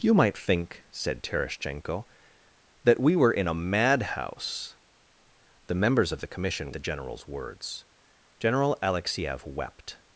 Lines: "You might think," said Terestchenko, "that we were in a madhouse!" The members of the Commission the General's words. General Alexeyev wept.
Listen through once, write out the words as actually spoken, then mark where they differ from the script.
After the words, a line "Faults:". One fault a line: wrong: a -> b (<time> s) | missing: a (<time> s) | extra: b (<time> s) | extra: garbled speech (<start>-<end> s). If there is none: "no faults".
"You might think," said Terestchenko, "that we were in a madhouse!" The members of the Commission the General's words. General Alexeyev wept.
Faults:
no faults